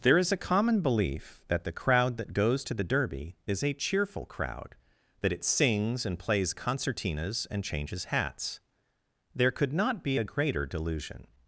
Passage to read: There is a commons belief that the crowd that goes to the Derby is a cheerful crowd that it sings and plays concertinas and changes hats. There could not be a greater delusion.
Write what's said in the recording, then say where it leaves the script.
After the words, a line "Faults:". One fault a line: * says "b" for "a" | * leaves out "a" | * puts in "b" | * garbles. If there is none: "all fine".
There is a common belief that the crowd that goes to the Derby is a cheerful crowd that it sings and plays concertinas and changes hats. There could not be a greater delusion.
Faults:
* says "common" for "commons"